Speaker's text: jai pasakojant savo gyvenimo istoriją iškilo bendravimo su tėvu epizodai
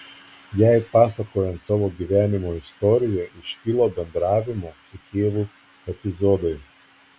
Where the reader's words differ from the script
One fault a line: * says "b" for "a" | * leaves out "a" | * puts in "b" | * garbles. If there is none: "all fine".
all fine